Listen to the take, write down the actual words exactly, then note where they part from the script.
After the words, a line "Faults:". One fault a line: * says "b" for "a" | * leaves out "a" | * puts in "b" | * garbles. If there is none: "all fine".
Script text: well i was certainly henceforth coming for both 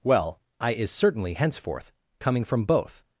well i is certainly henceforth coming from both
Faults:
* says "is" for "was"
* says "from" for "for"